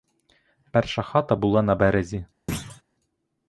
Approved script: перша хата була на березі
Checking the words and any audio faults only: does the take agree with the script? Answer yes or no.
no